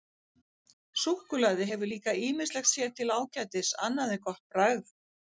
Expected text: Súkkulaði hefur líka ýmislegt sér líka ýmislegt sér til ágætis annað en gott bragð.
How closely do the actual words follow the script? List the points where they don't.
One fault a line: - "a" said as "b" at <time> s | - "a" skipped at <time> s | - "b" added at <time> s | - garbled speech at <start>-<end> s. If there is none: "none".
- "líka ýmislegt sér" skipped at 2.9 s